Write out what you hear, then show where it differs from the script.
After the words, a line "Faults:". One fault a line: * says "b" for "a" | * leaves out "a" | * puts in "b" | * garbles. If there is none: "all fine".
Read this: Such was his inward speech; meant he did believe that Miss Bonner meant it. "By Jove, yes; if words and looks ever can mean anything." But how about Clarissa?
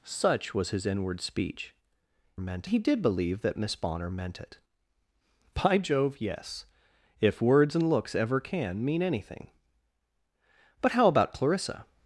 Such was his inward speech; meant he did believe that Miss Bonner meant it. "By Jove, yes; if words and looks ever can mean anything." But how about Clarissa?
Faults:
all fine